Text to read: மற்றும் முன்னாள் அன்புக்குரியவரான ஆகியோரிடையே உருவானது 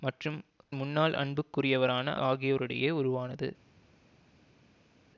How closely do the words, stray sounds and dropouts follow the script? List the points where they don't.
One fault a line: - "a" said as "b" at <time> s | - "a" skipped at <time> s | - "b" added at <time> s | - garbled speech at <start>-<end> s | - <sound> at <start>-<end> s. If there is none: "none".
none